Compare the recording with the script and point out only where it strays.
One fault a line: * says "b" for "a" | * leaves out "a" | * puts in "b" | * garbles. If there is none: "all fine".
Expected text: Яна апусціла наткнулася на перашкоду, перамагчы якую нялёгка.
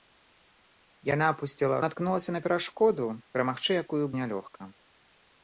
all fine